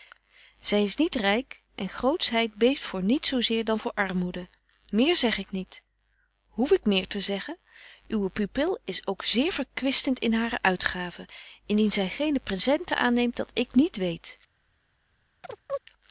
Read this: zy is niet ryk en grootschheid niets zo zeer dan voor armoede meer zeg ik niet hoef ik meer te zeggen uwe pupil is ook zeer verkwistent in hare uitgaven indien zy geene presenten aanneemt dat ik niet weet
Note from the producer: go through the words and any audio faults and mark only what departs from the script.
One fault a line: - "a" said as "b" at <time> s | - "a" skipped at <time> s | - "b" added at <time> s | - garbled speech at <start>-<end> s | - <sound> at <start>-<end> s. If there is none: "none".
- "beeft voor" added at 2.5 s
- chirp at 15.4-15.8 s